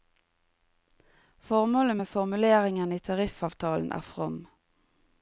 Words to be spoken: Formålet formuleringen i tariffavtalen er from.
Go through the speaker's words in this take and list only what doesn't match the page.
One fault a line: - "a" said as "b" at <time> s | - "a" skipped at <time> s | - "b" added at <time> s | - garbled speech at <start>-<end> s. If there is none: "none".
- "med" added at 1.9 s